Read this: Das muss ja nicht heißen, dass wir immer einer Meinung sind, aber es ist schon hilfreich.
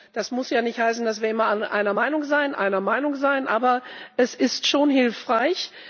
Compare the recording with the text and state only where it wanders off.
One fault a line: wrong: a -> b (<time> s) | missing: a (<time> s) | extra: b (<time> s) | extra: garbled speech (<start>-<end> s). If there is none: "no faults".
extra: einer Meinung sind (2.6 s)